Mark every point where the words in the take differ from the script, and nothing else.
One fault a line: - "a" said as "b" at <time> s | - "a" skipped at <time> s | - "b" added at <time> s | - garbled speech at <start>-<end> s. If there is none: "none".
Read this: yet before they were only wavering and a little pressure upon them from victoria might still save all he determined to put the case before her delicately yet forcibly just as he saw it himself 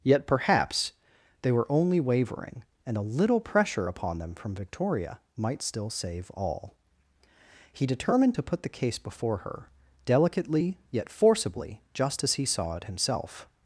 - "before" said as "perhaps" at 0.3 s